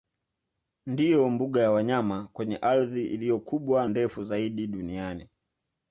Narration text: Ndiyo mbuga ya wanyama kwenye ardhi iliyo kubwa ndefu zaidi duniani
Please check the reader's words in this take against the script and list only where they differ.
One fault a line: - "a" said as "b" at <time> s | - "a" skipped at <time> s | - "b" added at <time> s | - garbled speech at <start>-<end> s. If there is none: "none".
none